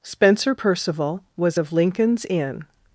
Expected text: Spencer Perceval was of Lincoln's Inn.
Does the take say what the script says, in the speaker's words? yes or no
yes